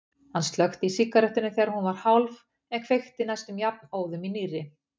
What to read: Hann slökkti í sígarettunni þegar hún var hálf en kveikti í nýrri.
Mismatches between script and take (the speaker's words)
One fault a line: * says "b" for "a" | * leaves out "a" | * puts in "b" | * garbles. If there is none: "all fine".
* puts in "næstum jafnóðum"